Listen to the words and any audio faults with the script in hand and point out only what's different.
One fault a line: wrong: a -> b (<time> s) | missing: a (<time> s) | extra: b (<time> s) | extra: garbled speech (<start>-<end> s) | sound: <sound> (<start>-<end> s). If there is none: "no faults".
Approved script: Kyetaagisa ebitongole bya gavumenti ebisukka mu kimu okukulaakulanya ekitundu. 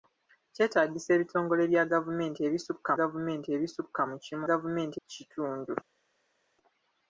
extra: gavumenti ebisukka (3.0 s)
wrong: okukulaakulanya -> gavumenti (4.5 s)